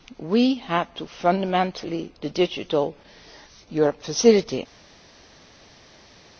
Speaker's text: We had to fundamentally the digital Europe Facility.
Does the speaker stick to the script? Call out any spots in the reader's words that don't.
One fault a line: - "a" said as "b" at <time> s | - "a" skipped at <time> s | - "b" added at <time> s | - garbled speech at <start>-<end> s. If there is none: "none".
none